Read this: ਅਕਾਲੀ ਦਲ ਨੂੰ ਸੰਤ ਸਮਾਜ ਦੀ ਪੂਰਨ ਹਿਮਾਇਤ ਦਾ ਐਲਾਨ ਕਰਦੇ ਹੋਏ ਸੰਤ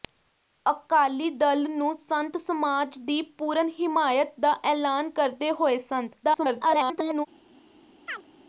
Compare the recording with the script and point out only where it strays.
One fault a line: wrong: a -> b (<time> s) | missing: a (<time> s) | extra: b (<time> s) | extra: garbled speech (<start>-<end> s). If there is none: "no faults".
extra: garbled speech (6.2-7.3 s)